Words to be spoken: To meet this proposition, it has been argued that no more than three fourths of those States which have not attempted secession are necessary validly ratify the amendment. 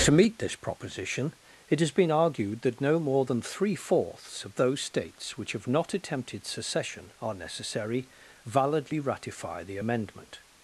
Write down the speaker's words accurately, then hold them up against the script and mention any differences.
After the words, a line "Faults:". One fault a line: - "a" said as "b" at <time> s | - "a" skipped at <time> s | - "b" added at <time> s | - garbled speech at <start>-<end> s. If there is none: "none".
To meet this proposition, it has been argued that no more than three fourths of those States which have not attempted secession are necessary validly ratify the amendment.
Faults:
none